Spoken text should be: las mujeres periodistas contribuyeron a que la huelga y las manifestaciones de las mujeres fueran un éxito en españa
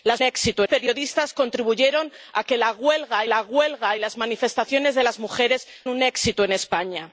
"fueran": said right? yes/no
no